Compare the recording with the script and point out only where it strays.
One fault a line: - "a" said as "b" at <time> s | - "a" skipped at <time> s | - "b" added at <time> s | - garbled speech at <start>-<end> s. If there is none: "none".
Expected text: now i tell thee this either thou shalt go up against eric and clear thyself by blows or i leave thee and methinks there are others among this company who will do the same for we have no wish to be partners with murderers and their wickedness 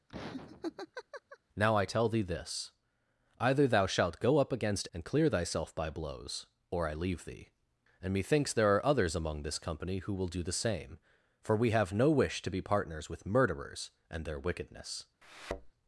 - "eric" skipped at 4.9 s